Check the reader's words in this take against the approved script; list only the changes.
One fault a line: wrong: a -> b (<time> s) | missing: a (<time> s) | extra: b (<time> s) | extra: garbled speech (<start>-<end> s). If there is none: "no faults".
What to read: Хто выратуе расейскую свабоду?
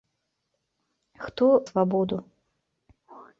missing: выратуе расейскую (1.4 s)